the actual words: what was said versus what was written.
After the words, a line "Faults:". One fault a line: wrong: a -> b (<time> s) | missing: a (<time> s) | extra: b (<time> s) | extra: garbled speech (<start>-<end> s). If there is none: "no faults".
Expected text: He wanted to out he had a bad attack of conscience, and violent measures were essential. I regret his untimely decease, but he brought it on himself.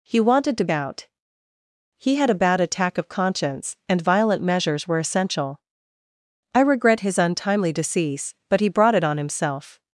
He wanted to out he had a bad attack of conscience, and violent measures were essential. I regret his untimely decease, but he brought it on himself.
Faults:
no faults